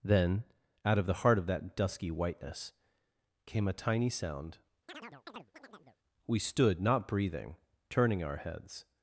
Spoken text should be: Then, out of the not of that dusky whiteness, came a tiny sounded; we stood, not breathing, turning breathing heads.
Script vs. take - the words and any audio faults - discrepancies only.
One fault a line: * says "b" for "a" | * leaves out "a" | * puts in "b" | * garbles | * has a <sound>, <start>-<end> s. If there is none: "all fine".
* says "heart" for "not"
* says "sound" for "sounded"
* has a chirp, 4.9-6.0 s
* says "our" for "breathing"